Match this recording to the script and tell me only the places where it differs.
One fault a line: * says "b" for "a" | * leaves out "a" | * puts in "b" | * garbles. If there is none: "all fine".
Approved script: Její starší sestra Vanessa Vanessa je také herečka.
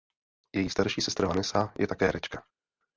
* leaves out "Vanessa"